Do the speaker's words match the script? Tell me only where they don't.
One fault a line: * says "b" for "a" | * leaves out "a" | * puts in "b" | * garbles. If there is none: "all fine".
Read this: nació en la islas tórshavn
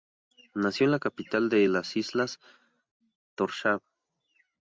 * puts in "capital de las"